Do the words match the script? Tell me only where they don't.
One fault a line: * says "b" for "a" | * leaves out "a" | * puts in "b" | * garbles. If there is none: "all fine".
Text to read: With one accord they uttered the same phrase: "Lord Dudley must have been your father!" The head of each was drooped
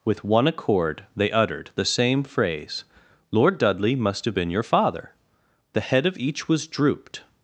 all fine